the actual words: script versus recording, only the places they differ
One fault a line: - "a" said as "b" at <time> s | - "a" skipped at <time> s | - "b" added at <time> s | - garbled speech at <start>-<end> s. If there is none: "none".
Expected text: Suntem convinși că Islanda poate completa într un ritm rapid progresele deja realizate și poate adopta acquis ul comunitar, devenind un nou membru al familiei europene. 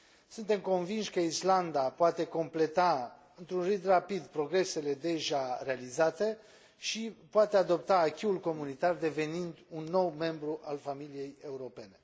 none